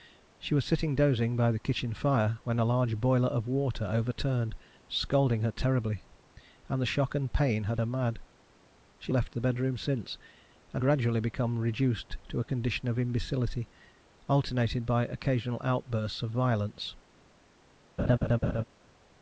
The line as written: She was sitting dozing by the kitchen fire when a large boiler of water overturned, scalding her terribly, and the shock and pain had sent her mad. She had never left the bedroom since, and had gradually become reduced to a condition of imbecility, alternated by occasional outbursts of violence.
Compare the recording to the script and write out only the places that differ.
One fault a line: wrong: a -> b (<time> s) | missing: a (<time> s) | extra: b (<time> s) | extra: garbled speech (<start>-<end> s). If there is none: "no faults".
missing: sent (7.8 s)
missing: had never (9.1 s)
missing: had (10.8 s)